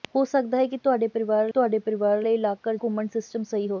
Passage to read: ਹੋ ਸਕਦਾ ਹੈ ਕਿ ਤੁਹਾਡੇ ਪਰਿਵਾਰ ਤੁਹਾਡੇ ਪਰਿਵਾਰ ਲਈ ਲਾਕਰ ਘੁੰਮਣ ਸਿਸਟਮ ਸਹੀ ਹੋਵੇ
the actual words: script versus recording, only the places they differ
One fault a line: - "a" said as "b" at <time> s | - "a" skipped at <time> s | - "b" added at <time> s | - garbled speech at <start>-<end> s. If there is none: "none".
none